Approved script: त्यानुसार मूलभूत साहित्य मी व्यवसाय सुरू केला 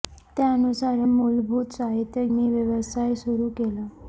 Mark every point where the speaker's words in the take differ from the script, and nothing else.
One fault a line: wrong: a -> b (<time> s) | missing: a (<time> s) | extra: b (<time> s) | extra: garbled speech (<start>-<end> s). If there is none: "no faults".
no faults